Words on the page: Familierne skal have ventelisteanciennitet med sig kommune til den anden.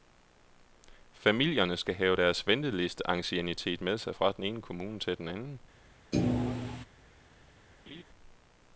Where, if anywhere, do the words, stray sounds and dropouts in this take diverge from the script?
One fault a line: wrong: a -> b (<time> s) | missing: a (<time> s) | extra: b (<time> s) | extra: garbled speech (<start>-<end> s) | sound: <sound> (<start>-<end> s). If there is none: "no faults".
extra: deres (2.1 s)
extra: fra den ene (4.1 s)
sound: thud (6.1-6.9 s)
sound: laugh (7.9-8.0 s)